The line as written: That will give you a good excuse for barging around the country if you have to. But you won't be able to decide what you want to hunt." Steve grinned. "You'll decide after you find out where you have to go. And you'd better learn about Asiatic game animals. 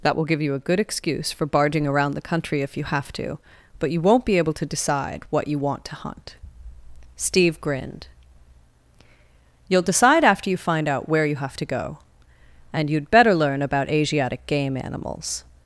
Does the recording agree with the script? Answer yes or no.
yes